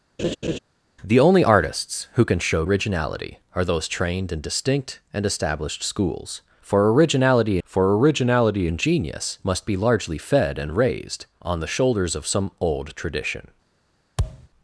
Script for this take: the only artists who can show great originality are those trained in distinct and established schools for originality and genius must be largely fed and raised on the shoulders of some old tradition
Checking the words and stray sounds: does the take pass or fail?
fail